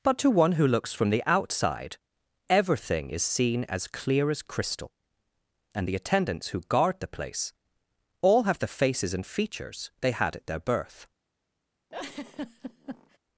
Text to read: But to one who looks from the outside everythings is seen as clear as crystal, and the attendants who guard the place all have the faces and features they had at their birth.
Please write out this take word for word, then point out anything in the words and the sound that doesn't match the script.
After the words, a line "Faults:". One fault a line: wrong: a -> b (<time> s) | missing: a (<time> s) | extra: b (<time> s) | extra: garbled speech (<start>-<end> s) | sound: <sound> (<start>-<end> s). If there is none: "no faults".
But to one who looks from the outside everything is seen as clear as crystal, and the attendants who guard the place all have the faces and features they had at their birth.
Faults:
wrong: everythings -> everything (2.5 s)
sound: laugh (11.9-13.2 s)